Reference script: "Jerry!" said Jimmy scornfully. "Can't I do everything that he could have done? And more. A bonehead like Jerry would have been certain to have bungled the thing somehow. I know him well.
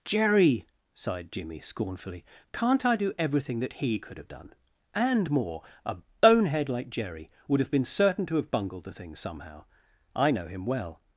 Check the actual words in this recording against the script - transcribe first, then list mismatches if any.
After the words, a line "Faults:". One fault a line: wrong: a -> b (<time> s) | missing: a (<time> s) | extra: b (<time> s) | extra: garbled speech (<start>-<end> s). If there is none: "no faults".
"Jerry!" sighed Jimmy scornfully. "Can't I do everything that he could have done? And more. A bonehead like Jerry would have been certain to have bungled the thing somehow. I know him well.
Faults:
wrong: said -> sighed (0.9 s)